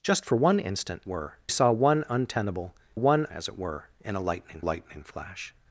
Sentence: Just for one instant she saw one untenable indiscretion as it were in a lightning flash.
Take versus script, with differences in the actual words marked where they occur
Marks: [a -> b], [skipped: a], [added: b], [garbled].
Just for one instant [she -> were] saw one untenable [indiscretion -> one] as it were in a lightning [added: lightning] flash.